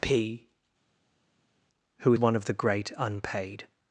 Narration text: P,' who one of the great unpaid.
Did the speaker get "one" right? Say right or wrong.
right